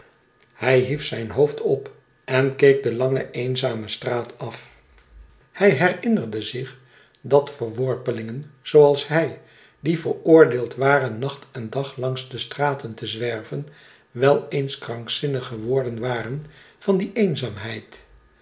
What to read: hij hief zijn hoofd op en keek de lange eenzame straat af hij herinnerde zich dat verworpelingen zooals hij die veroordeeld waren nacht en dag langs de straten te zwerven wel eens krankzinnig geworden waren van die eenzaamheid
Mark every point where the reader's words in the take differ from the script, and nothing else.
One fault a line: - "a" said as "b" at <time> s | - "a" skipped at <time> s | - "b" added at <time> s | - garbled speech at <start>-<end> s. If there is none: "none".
none